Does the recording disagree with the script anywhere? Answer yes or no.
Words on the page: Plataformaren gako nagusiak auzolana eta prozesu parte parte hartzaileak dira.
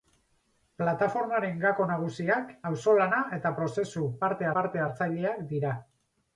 no